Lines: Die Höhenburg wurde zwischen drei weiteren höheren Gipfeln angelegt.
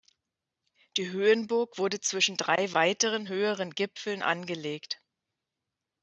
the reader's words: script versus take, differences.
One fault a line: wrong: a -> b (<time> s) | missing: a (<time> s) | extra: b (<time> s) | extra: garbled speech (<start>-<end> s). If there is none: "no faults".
no faults